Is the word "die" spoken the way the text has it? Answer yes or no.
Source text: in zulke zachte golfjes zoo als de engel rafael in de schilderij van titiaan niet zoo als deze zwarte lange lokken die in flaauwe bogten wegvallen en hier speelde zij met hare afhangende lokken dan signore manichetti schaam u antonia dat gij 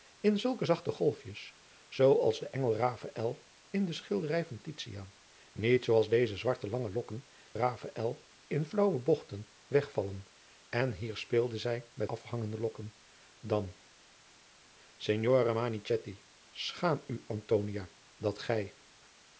no